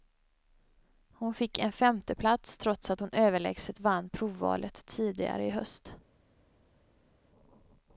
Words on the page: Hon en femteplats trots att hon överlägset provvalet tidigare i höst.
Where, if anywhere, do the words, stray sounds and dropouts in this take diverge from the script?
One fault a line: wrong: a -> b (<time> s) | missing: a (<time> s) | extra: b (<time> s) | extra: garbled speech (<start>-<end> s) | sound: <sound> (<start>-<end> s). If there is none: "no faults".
extra: fick (1.3 s)
extra: vann (3.8 s)